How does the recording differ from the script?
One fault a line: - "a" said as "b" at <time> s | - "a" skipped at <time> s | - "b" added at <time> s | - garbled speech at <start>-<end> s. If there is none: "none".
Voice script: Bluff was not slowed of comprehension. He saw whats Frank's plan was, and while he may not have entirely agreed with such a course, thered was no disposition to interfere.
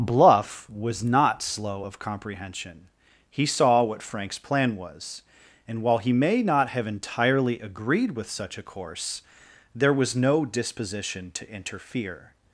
- "slowed" said as "slow" at 1.4 s
- "whats" said as "what" at 3.8 s
- "thered" said as "there" at 9.8 s